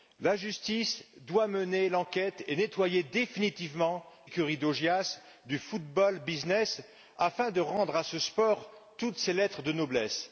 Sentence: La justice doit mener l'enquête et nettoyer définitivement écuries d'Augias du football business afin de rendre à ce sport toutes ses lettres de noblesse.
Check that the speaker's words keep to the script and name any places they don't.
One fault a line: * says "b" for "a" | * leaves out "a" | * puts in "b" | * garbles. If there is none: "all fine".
all fine